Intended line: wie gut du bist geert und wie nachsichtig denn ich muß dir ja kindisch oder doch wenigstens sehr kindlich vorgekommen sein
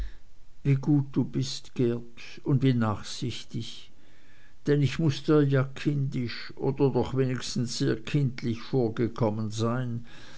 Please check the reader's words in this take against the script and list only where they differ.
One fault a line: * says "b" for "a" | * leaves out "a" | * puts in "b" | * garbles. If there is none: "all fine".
all fine